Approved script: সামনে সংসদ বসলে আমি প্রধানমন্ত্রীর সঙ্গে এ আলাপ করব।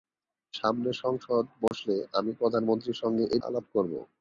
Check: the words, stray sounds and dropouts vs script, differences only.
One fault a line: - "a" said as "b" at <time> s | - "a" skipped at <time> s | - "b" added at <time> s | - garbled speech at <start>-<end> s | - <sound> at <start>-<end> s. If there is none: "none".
- dropout at 1.7-1.7 s